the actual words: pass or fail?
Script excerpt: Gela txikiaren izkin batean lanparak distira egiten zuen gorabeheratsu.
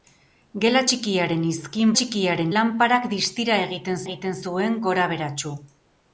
fail